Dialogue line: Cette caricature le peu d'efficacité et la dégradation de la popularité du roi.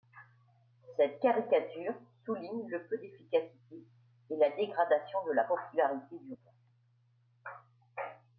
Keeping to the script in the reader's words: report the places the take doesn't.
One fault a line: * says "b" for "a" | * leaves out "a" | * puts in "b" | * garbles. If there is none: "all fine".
* puts in "souligne"